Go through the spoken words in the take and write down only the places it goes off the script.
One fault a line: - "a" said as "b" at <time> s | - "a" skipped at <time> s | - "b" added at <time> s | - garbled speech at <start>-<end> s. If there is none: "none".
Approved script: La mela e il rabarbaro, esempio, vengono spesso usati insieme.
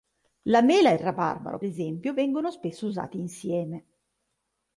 none